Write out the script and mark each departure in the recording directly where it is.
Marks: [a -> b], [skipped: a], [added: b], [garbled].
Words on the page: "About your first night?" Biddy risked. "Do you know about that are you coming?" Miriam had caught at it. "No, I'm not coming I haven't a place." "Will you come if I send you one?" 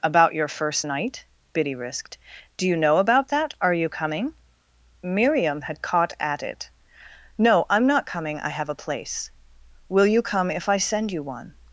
"About your first night?" Biddy risked. "Do you know about that are you coming?" Miriam had caught at it. "No, I'm not coming I [haven't -> have] a place." "Will you come if I send you one?"